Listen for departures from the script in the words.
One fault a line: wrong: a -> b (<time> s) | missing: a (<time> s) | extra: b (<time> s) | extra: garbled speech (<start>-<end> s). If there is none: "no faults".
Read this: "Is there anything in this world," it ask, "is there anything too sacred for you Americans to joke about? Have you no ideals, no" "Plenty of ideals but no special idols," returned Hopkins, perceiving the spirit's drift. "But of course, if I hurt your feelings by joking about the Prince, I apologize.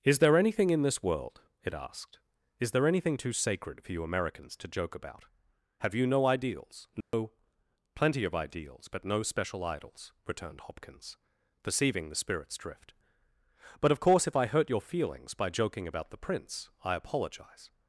wrong: ask -> asked (1.8 s)